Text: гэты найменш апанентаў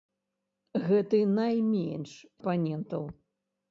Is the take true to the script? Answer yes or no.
yes